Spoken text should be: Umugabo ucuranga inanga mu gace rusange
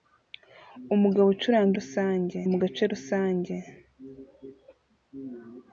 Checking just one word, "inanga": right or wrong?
wrong